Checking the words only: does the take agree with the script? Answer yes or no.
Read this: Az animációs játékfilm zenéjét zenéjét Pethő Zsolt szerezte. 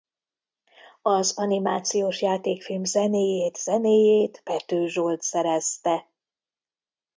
yes